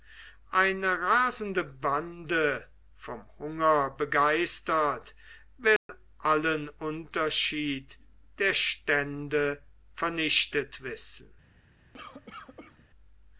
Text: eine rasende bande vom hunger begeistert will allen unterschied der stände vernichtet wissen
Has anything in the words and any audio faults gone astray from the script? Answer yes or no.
yes